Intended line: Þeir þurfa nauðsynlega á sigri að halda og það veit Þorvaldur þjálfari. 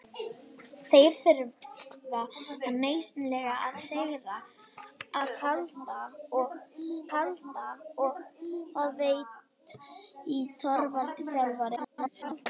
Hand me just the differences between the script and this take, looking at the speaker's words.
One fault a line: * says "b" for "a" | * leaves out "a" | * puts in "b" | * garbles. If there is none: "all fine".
* puts in "halda og"
* garbles